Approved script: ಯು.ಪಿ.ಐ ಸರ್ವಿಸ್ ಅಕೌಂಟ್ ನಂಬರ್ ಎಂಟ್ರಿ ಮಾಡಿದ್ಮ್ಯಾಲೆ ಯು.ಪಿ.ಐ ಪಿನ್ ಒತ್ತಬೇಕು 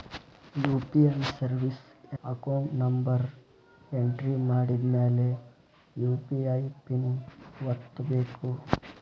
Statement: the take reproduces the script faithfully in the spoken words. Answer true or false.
true